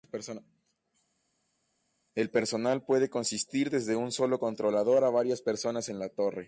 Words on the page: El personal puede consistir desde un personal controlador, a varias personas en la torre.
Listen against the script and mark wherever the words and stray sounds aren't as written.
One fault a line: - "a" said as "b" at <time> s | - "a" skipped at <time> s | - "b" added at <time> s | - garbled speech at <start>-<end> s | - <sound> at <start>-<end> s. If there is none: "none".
- "personal" said as "solo" at 4.1 s